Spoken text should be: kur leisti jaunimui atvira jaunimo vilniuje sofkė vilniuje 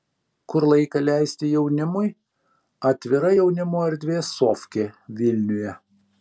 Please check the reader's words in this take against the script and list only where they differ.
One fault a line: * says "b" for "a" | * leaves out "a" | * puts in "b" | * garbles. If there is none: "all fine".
* puts in "laiką"
* says "erdvė" for "vilniuje"